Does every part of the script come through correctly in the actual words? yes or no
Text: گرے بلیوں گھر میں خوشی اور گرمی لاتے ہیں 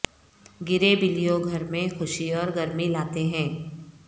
yes